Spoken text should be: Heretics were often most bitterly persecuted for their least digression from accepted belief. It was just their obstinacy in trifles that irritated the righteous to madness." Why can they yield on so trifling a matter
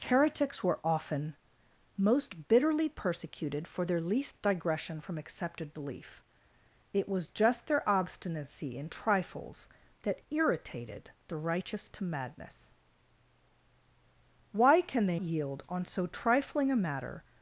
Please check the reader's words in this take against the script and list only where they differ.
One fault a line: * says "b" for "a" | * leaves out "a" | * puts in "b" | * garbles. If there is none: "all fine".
all fine